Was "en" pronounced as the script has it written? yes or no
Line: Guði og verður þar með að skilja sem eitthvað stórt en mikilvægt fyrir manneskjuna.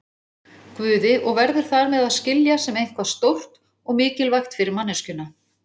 no